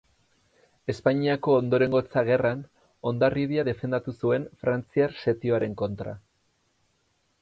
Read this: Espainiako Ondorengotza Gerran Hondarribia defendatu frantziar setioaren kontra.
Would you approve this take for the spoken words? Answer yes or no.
no